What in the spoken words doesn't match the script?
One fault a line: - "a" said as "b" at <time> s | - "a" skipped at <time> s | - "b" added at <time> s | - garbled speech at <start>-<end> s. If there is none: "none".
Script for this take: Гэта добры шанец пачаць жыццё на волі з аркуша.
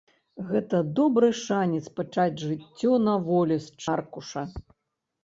none